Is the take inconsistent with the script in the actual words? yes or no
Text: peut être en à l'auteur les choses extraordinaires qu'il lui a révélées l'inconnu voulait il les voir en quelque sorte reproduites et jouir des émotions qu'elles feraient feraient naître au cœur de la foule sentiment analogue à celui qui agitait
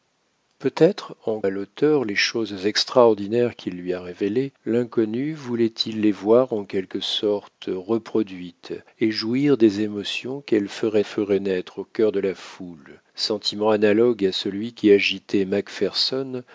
no